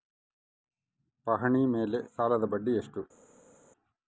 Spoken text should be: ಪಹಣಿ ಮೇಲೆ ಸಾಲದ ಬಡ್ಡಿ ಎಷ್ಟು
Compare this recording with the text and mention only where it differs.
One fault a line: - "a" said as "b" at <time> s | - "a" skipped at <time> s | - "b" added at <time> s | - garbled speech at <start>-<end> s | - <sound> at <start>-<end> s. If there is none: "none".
none